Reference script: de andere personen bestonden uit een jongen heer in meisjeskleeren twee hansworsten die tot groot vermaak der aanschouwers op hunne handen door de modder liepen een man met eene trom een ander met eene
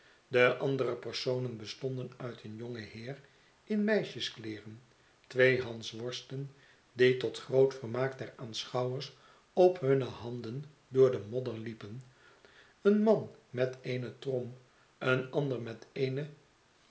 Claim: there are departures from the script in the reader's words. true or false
false